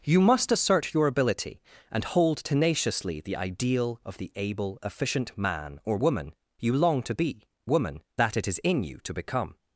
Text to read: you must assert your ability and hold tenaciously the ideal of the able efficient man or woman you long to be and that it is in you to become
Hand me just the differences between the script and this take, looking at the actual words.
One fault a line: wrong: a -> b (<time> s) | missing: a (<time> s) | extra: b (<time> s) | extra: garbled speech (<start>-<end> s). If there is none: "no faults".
wrong: and -> woman (7.6 s)